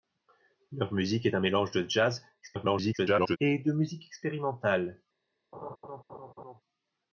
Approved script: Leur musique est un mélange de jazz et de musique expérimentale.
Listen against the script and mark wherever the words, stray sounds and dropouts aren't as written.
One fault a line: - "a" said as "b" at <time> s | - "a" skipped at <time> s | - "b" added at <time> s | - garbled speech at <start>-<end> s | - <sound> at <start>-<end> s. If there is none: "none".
- garbled speech at 2.4-3.4 s
- laugh at 5.5-6.6 s